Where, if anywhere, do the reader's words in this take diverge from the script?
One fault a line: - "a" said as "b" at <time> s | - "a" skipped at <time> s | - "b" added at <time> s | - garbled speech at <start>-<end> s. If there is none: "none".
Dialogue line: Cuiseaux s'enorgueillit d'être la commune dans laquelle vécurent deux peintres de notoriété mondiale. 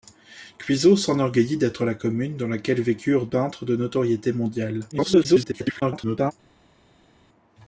- "deux" skipped at 3.3 s
- garbled speech at 4.9-6.3 s